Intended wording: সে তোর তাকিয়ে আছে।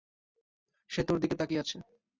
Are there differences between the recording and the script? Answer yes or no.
yes